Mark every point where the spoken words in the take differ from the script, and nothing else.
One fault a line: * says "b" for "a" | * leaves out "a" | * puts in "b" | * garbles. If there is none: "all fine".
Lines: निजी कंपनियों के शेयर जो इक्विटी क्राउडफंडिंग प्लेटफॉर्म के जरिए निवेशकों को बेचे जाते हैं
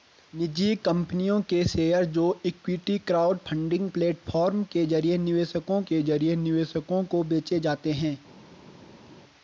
* puts in "के जरिए निवेशकों"